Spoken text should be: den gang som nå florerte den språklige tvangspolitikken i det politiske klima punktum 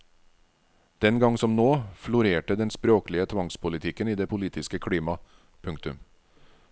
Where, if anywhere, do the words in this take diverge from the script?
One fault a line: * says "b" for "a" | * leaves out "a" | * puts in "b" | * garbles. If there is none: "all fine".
all fine